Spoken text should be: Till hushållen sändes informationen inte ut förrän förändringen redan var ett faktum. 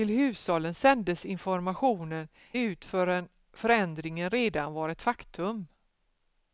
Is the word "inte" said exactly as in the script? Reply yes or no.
no